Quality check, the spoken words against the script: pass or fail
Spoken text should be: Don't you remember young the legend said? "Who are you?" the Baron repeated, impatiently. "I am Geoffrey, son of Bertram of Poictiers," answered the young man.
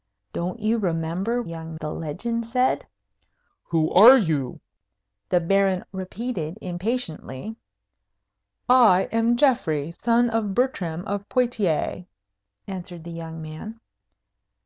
pass